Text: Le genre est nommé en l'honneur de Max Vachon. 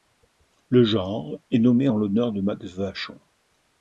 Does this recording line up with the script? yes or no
yes